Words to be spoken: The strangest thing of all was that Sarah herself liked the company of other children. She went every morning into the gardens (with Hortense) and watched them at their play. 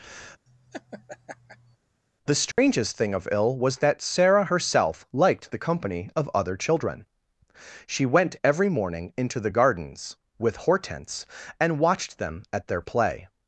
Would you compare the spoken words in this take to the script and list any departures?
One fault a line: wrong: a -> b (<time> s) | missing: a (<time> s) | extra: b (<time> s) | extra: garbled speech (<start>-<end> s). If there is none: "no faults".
wrong: all -> ill (3.3 s)